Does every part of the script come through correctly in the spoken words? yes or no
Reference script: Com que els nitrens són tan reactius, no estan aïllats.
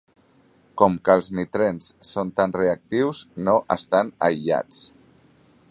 yes